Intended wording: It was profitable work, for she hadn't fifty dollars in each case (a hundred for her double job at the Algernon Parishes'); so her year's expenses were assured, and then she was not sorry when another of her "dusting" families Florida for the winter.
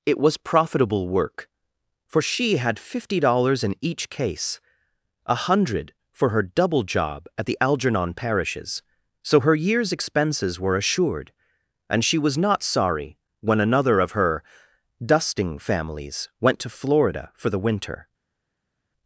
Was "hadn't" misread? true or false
true